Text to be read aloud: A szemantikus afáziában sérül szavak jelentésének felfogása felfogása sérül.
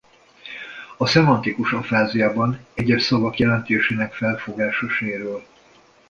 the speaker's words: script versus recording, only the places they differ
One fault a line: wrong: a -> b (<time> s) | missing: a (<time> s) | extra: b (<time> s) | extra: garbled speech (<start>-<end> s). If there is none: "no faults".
wrong: sérül -> egyes (2.7 s)
missing: felfogása (4.9 s)